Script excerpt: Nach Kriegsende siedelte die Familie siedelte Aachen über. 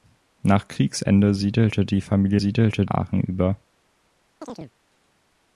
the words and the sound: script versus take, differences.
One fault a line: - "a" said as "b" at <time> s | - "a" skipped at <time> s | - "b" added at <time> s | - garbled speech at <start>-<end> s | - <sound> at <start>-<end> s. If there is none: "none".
- chirp at 4.4-4.7 s